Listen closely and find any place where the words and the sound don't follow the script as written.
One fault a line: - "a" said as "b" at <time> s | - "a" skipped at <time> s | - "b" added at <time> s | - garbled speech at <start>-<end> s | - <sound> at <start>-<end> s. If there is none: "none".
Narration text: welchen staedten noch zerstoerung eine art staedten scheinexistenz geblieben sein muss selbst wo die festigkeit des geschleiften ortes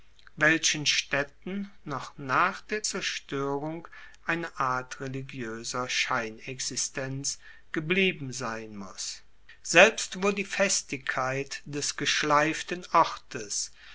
- "nach der" added at 2.2 s
- "staedten" said as "religioeser" at 5.0 s